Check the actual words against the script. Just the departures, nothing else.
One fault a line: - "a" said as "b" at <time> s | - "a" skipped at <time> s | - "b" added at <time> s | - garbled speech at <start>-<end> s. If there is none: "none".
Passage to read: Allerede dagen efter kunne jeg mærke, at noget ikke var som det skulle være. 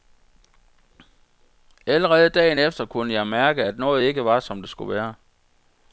none